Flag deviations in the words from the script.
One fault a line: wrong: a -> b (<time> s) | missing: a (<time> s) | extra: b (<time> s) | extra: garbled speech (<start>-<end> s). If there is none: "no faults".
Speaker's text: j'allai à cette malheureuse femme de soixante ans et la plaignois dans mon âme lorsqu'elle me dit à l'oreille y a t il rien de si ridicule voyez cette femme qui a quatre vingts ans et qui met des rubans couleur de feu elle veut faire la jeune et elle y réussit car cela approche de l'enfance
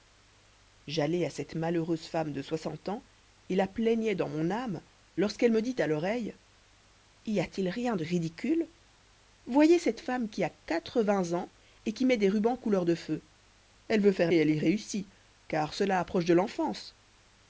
missing: si (8.0 s)
missing: la jeune (14.3 s)